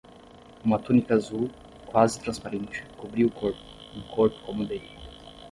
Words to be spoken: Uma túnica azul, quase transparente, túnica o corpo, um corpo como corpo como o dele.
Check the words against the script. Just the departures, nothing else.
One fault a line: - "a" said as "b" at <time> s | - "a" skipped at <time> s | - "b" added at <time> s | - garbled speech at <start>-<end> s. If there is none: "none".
- "túnica" said as "cobria" at 3.0 s
- "corpo como" skipped at 4.6 s